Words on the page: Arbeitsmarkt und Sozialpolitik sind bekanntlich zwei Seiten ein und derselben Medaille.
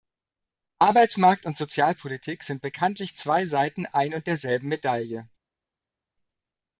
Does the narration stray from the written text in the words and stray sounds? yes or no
no